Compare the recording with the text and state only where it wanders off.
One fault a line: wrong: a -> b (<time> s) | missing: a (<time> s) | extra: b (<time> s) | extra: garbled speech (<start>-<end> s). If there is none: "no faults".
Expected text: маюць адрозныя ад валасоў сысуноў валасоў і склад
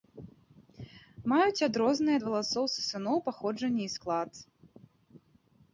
wrong: валасоў -> паходжанне (3.3 s)